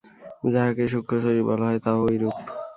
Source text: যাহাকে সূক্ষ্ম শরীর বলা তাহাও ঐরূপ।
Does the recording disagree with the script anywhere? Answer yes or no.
yes